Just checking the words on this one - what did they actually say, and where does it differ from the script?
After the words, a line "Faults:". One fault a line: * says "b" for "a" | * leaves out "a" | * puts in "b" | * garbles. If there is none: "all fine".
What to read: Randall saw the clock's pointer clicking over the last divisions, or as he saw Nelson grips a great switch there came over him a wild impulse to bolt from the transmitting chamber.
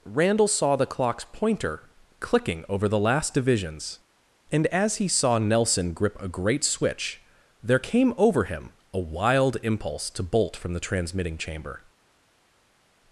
Randall saw the clock's pointer clicking over the last divisions, and as he saw Nelson grip a great switch there came over him a wild impulse to bolt from the transmitting chamber.
Faults:
* says "and" for "or"
* says "grip" for "grips"